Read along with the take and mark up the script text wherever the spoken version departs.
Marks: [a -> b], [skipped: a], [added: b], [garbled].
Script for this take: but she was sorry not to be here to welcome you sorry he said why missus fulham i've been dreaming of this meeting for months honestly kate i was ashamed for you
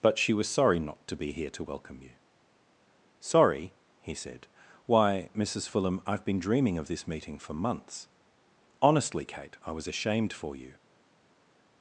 but she was sorry not to be here to welcome you sorry he said why missus fulham i've been dreaming of this meeting for months honestly kate i was ashamed for you